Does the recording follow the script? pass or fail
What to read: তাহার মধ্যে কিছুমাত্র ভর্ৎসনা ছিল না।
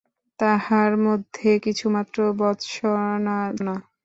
fail